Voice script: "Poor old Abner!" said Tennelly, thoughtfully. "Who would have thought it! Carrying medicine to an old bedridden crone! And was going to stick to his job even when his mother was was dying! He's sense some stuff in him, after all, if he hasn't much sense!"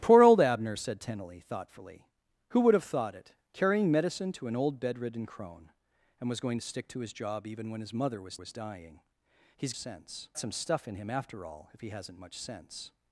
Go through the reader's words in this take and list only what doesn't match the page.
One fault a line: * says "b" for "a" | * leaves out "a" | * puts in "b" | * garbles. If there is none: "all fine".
all fine